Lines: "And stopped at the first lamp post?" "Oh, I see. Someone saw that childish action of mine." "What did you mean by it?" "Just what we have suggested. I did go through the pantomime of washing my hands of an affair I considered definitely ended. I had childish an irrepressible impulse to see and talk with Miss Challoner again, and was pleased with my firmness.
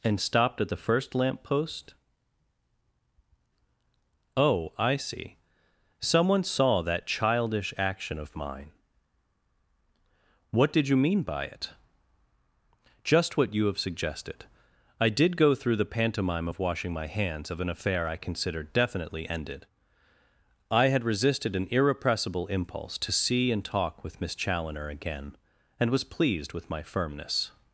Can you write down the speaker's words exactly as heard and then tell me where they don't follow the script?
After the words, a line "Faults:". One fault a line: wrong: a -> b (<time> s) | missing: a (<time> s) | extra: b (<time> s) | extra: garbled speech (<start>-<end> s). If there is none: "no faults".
"And stopped at the first lamp post?" "Oh, I see. Someone saw that childish action of mine." "What did you mean by it?" "Just what you have suggested. I did go through the pantomime of washing my hands of an affair I considered definitely ended. I had resisted an irrepressible impulse to see and talk with Miss Challoner again, and was pleased with my firmness.
Faults:
wrong: we -> you (13.5 s)
wrong: childish -> resisted (21.0 s)